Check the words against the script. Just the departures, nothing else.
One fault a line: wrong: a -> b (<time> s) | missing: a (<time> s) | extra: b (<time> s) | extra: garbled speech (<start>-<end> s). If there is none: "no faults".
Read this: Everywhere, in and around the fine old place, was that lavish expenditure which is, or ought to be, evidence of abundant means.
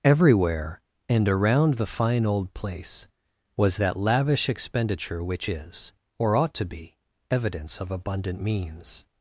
missing: in (0.8 s)